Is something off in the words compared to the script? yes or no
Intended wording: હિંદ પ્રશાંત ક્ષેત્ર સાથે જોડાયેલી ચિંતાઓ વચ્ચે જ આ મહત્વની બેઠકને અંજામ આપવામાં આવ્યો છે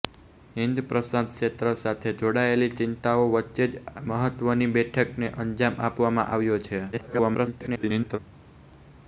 yes